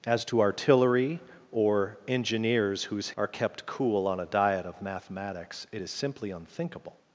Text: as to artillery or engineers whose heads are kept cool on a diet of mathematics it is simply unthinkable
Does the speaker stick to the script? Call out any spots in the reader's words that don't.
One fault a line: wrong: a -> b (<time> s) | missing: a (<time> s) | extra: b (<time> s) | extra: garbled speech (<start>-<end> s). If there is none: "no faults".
missing: heads (3.1 s)